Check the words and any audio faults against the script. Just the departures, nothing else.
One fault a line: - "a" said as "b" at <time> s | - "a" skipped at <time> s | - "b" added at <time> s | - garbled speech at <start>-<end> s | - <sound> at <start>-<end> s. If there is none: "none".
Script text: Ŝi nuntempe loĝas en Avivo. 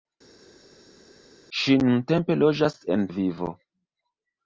none